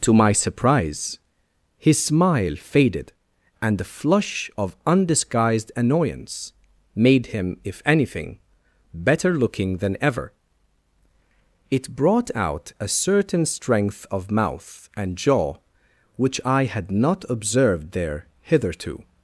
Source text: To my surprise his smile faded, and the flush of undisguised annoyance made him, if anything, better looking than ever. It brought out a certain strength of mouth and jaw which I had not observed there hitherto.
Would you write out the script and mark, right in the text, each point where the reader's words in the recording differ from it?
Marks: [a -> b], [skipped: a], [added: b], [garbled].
To my surprise his smile faded, and the flush of undisguised annoyance made him, if anything, better looking than ever. It brought out a certain strength of mouth and jaw which I had not observed there hitherto.